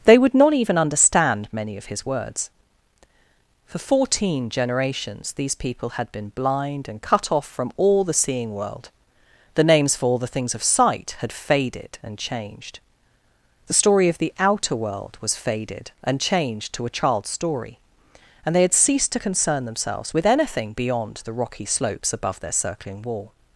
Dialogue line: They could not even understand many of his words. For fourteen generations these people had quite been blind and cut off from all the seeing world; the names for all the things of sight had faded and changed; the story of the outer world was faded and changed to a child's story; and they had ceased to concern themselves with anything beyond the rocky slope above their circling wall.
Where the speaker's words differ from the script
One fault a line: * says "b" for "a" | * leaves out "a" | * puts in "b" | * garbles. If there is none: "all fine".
* says "would" for "could"
* leaves out "quite"
* says "slopes" for "slope"